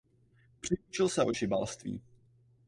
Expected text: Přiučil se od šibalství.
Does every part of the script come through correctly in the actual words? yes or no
yes